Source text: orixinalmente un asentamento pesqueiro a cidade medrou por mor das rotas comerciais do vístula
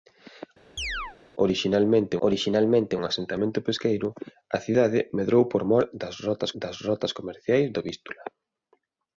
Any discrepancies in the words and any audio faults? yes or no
yes